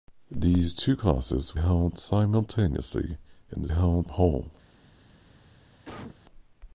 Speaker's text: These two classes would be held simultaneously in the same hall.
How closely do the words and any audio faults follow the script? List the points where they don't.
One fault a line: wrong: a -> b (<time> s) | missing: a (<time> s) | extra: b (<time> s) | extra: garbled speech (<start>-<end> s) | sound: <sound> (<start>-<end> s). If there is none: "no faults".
missing: would be (1.6 s)
wrong: same -> held (3.7 s)
sound: cough (5.8-6.2 s)